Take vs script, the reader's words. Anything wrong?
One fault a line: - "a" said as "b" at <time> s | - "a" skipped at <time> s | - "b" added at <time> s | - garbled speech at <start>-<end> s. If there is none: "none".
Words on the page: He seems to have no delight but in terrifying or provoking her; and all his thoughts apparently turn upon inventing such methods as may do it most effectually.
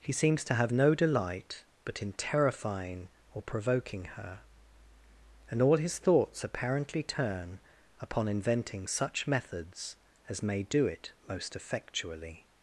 none